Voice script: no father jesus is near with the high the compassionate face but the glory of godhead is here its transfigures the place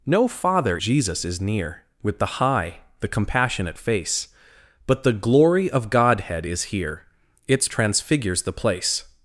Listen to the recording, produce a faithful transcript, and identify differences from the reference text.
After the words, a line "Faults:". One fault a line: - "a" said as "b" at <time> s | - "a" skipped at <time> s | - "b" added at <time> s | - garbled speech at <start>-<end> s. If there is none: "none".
no father jesus is near with the high the compassionate face but the glory of godhead is here its transfigures the place
Faults:
none